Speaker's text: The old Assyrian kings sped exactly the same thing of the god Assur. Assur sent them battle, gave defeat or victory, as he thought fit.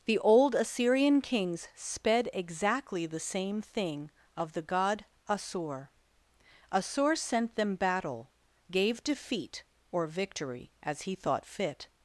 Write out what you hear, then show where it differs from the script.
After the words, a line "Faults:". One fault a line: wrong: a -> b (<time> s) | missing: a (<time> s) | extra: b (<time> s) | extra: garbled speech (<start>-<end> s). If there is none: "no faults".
The old Assyrian kings sped exactly the same thing of the god Assur. Assur sent them battle, gave defeat or victory, as he thought fit.
Faults:
no faults